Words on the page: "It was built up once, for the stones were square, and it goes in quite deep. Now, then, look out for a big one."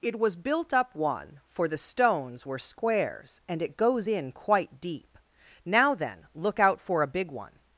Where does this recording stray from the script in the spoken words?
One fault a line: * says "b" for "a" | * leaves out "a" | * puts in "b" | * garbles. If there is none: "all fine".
* says "one" for "once"
* says "squares" for "square"